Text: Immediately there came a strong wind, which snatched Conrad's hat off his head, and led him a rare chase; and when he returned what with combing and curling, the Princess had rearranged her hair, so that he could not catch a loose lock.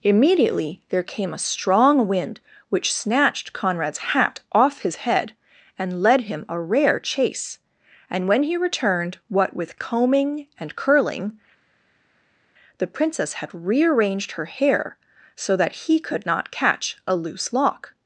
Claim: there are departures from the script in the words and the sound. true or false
false